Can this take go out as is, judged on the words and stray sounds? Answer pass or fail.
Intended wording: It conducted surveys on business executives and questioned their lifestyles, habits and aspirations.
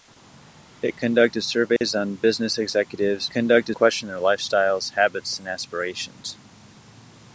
fail